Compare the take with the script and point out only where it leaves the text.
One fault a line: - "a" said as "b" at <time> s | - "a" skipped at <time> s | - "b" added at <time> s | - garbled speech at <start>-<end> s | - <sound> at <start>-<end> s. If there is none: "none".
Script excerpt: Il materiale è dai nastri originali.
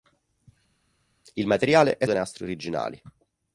none